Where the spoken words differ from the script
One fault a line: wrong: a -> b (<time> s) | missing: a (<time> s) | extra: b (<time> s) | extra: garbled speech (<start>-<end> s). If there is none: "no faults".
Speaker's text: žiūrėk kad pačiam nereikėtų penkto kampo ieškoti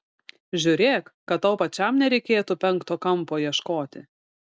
extra: tau (1.4 s)